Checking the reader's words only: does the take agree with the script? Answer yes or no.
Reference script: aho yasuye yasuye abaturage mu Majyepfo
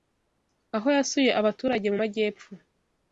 no